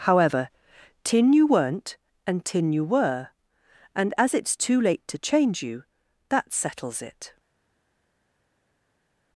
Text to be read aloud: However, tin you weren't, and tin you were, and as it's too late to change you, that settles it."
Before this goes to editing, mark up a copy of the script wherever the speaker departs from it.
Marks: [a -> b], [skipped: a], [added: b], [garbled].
However, tin you weren't, and tin you were, and as it's too late to change you, that settles it."